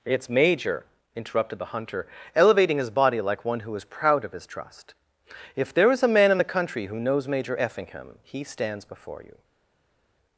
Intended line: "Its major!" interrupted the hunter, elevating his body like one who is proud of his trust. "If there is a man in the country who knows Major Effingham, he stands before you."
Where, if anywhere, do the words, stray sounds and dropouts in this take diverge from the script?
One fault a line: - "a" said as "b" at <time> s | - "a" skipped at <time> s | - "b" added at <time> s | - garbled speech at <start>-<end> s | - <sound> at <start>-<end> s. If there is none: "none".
none